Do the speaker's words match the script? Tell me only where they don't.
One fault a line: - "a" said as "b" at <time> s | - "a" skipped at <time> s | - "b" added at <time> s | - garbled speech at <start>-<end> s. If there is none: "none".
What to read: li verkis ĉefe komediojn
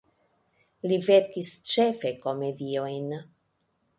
none